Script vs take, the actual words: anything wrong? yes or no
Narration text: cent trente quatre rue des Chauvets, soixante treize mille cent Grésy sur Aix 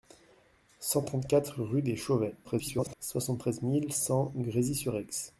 yes